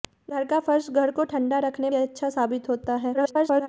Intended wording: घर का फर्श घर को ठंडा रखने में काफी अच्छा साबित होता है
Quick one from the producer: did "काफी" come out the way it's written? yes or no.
no